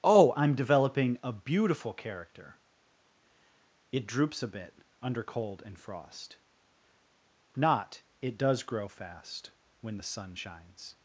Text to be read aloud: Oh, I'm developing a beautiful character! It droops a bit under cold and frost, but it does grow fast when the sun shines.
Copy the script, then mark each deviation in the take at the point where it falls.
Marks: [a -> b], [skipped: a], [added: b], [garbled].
Oh, I'm developing a beautiful character! It droops a bit under cold and frost, [but -> not] it does grow fast when the sun shines.